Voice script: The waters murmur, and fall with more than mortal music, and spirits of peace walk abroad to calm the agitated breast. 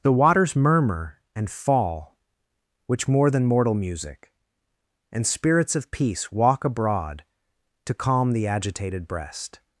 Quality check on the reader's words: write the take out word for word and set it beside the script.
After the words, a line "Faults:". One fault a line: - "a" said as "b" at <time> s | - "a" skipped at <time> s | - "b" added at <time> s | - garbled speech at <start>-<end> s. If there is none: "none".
The waters murmur, and fall which more than mortal music, and spirits of peace walk abroad to calm the agitated breast.
Faults:
- "with" said as "which" at 2.9 s